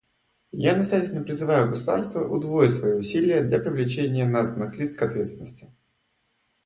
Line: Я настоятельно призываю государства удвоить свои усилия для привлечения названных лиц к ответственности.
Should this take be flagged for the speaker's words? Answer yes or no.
no